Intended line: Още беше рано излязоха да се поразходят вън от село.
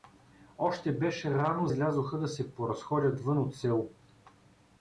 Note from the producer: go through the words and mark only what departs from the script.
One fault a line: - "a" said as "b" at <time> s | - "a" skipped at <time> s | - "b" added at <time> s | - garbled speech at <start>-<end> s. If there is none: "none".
none